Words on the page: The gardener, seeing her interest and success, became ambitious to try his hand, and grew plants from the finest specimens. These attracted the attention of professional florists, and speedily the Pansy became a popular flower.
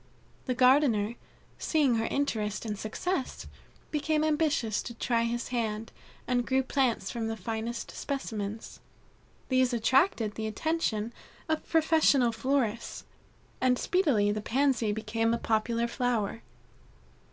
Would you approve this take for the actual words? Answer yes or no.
yes